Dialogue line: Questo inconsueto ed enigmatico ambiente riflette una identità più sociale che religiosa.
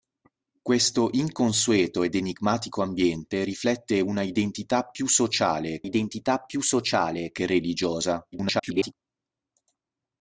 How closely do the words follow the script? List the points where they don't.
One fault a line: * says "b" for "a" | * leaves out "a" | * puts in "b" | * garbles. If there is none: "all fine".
* puts in "identità più sociale"
* garbles